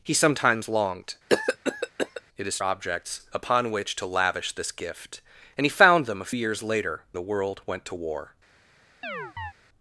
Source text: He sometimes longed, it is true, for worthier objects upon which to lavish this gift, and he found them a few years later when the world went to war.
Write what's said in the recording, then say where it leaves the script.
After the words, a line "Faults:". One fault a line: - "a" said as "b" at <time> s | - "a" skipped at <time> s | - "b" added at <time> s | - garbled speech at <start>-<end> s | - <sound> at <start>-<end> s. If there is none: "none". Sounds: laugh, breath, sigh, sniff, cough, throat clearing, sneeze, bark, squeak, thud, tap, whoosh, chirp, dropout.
He sometimes longed, it is objects upon which to lavish this gift, and he found them a years later the world went to war.
Faults:
- cough at 1.3-2.2 s
- "true for worthier" skipped at 2.6 s
- "few" skipped at 6.3 s
- "when" skipped at 7.0 s
- chirp at 9.0-9.5 s